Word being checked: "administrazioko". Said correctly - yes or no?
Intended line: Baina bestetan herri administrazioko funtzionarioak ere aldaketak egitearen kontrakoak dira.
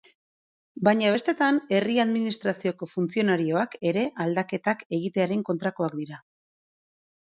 yes